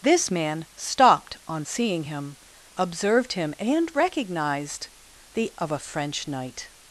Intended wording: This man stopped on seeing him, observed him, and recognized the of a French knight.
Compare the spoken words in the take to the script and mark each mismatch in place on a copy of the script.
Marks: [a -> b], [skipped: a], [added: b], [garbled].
This man stopped on seeing him, observed him, and recognized the of a French knight.